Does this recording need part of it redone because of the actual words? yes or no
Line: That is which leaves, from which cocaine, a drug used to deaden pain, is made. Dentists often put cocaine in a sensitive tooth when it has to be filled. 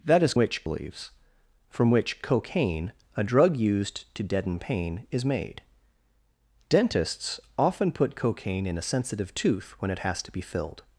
no